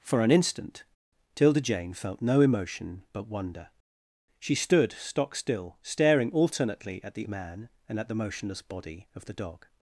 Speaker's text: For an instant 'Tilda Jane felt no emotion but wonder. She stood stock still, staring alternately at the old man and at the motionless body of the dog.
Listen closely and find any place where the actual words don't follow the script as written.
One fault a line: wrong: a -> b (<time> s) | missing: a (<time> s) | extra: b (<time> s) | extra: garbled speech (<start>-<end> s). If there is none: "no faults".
missing: old (7.3 s)